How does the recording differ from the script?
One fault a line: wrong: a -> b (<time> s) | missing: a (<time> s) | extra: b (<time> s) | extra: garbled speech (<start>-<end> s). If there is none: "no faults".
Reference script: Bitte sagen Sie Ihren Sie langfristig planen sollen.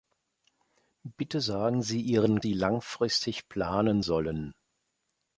no faults